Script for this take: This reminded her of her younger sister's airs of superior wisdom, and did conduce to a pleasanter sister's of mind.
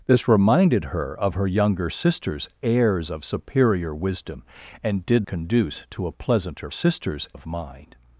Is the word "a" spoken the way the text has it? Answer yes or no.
yes